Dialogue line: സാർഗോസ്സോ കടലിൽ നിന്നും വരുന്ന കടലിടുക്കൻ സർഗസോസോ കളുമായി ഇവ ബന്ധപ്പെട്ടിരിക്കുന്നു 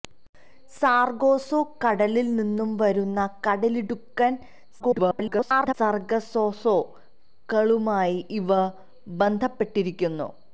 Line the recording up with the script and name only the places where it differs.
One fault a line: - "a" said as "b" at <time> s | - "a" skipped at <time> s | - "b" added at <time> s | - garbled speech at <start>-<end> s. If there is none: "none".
- garbled speech at 4.8-5.7 s